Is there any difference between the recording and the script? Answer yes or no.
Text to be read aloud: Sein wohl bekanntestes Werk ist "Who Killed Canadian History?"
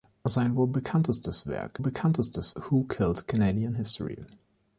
yes